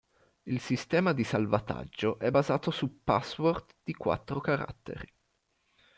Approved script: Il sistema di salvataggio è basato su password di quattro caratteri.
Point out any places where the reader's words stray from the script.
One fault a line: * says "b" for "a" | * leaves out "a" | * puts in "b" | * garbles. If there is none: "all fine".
all fine